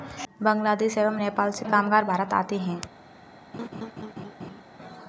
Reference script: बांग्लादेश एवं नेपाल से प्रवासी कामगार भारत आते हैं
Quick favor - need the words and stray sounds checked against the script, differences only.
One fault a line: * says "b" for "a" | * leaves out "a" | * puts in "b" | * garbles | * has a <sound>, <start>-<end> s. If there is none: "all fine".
* leaves out "प्रवासी"
* has a laugh, 3.5-4.6 s